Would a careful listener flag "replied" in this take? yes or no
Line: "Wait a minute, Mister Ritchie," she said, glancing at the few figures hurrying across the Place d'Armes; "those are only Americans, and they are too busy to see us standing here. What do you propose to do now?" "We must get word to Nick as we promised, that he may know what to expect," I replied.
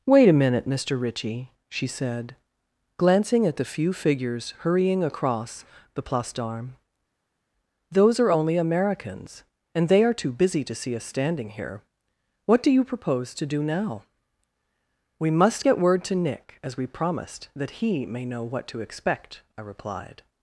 no